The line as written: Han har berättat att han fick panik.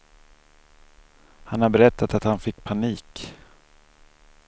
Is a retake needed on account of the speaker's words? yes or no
no